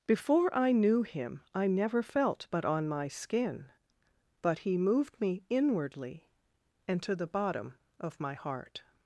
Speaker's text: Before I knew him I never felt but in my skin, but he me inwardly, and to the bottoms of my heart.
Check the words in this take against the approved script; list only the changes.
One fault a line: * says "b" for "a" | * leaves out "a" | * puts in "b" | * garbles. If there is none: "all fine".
* says "on" for "in"
* puts in "moved"
* says "bottom" for "bottoms"